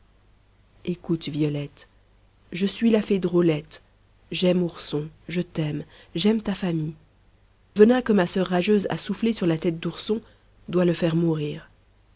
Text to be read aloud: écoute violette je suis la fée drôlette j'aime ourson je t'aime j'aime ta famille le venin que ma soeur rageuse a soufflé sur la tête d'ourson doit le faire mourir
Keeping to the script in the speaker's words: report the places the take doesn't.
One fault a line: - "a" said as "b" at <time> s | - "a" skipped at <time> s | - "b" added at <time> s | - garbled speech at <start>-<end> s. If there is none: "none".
- "le" skipped at 6.9 s